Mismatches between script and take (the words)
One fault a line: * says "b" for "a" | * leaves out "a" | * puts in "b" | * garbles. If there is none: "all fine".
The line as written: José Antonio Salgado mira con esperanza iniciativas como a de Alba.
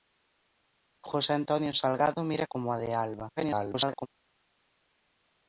* leaves out "con esperanza iniciativas"
* garbles